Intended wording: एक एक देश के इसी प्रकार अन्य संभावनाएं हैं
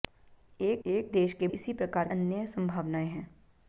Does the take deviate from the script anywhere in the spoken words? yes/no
no